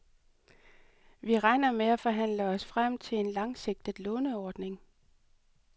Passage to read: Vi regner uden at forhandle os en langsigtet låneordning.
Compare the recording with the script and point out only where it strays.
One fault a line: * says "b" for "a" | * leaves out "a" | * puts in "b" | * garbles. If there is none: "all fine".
* says "med" for "uden"
* puts in "frem til"